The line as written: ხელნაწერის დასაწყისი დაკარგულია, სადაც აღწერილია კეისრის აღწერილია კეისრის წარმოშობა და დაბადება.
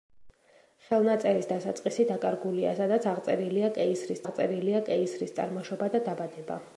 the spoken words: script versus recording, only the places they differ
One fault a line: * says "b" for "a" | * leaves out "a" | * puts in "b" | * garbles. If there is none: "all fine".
all fine